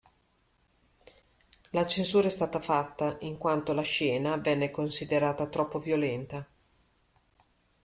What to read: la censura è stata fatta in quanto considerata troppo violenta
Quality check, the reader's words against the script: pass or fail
fail